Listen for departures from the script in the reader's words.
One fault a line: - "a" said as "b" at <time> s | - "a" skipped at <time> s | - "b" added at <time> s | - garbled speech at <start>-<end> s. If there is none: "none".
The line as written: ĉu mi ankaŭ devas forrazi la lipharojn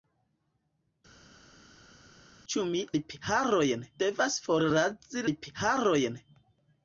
- "ankaŭ" said as "lipharojn" at 3.0 s
- "la" skipped at 5.3 s